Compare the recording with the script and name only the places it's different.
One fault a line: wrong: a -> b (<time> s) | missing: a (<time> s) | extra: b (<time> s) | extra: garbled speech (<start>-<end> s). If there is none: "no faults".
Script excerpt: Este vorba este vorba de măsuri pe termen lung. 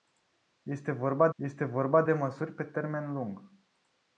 no faults